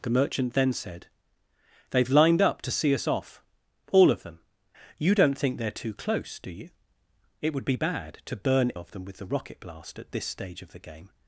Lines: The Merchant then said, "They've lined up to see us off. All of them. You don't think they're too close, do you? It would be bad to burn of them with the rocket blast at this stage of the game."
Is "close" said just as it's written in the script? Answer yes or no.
yes